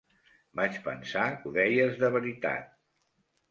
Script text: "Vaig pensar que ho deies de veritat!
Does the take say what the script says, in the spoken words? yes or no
no